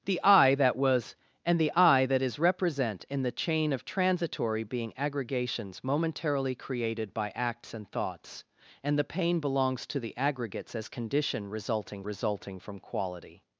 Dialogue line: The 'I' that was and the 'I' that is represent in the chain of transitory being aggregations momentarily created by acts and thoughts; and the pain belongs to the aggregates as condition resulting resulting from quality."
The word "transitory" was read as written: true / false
true